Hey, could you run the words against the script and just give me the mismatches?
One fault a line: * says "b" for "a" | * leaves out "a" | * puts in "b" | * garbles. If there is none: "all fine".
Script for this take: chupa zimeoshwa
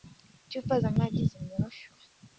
* puts in "za maji"